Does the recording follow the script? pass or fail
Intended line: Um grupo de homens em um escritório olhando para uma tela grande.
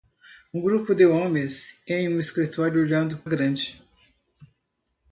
fail